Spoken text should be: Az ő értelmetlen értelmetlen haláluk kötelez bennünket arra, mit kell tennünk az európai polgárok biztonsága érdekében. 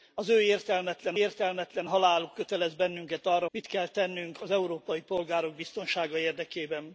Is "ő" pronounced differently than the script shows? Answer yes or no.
no